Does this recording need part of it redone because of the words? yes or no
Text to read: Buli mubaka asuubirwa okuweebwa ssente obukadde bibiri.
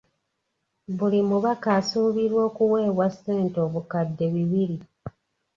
no